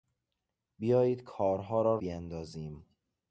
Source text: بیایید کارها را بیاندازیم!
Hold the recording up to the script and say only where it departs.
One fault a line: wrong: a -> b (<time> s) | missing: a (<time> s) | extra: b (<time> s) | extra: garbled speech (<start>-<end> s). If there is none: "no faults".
no faults